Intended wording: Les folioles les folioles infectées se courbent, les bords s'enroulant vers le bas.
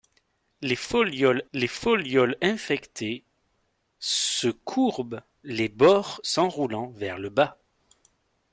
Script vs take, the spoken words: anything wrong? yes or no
no